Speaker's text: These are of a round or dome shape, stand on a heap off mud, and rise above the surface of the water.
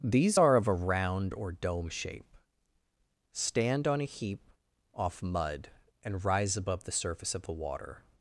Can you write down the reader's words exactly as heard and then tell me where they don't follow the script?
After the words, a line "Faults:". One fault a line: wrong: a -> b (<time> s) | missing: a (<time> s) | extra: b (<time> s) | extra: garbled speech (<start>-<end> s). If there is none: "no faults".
These are of a round or dome shape, stand on a heap off mud, and rise above the surface of the water.
Faults:
no faults